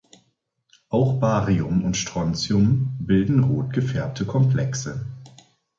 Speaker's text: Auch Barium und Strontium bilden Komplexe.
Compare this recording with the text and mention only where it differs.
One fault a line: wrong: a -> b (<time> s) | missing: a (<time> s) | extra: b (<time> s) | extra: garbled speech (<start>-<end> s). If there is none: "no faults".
extra: rot gefärbte (3.4 s)